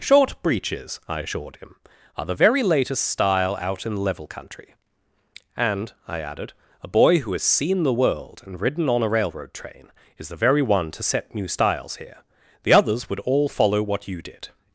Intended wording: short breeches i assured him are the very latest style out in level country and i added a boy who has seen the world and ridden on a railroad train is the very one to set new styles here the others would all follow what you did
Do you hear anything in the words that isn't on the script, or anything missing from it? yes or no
no